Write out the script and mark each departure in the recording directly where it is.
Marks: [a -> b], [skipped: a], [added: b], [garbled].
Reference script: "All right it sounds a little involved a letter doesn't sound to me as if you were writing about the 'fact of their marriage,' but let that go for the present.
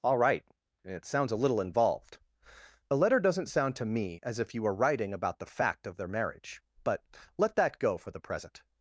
"All right it sounds a little involved a letter doesn't sound to me as if you were writing about the 'fact of their marriage,' but let that go for the present.